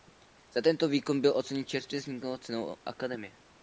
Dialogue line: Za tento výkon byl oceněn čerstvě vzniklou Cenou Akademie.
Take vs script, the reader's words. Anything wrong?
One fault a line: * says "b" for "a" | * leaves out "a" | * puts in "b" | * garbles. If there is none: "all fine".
all fine